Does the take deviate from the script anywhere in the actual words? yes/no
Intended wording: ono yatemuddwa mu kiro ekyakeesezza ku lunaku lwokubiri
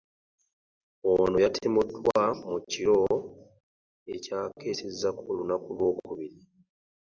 no